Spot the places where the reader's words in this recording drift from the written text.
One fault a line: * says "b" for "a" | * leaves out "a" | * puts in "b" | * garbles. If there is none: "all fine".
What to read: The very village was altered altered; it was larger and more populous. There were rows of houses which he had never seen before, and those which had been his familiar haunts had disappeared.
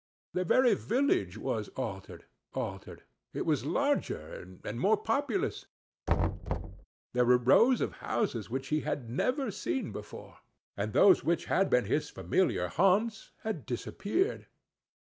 all fine